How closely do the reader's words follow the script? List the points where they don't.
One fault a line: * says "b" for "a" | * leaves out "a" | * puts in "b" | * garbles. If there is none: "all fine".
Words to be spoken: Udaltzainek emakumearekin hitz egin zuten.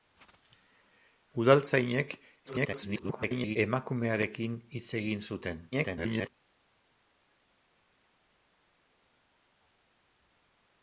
* garbles
* garbles